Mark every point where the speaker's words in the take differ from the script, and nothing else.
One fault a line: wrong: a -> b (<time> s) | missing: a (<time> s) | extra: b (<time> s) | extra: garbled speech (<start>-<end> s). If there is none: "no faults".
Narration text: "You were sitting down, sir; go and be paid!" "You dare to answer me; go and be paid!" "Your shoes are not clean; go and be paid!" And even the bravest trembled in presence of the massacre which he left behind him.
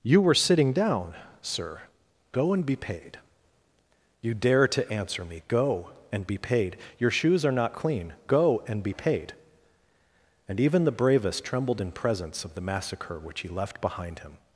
no faults